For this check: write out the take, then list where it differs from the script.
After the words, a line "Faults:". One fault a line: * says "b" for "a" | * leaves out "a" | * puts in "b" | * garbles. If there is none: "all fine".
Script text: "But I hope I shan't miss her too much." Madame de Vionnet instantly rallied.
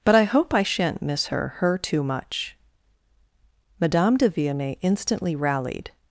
"But I hope I shan't miss her her too much." Madame de Vionnet instantly rallied.
Faults:
* puts in "her"